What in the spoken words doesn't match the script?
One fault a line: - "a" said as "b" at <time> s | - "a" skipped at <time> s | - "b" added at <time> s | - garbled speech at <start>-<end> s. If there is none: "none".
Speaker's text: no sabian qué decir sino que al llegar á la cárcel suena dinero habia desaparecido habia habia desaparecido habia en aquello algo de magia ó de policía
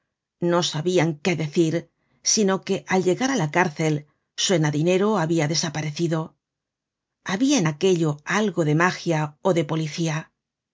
- "habia desaparecido habia" skipped at 7.6 s